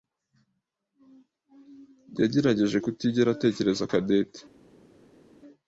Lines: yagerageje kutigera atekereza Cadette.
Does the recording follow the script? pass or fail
pass